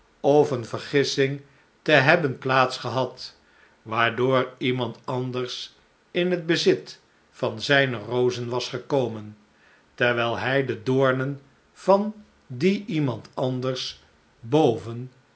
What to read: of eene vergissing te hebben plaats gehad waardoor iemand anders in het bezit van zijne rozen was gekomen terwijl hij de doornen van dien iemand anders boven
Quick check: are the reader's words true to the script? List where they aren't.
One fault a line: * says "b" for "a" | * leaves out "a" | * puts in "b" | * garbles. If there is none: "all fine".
all fine